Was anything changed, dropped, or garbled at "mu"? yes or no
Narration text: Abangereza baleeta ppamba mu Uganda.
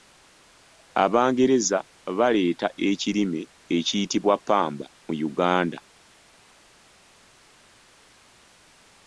no